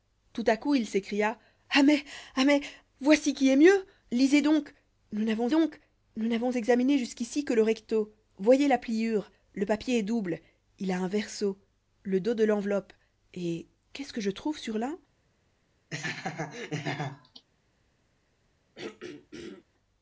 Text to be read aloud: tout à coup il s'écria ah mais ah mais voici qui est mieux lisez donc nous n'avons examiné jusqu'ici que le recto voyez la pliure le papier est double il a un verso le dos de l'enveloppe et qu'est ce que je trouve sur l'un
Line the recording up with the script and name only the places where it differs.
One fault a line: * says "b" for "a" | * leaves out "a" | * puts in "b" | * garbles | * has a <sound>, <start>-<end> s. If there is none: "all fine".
* puts in "donc nous n'avons"
* has a laugh, 15.9-17.5 s
* has a throat clearing, 18.8-19.6 s